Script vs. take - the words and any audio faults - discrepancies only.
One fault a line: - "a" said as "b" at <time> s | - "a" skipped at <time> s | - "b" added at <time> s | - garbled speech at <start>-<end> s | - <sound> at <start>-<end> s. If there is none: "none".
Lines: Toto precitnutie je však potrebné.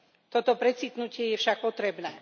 none